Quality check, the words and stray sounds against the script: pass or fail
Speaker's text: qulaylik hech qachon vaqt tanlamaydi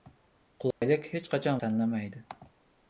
fail